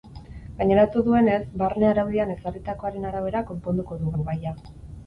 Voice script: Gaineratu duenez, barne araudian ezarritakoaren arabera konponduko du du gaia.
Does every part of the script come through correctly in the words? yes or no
yes